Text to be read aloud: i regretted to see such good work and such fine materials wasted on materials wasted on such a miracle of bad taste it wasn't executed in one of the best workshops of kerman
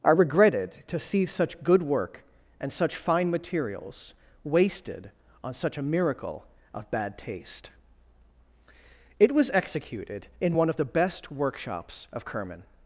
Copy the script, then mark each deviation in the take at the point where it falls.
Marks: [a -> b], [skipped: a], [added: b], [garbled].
i regretted to see such good work and such fine materials wasted on [skipped: materials wasted on] such a miracle of bad taste it [wasn't -> was] executed in one of the best workshops of kerman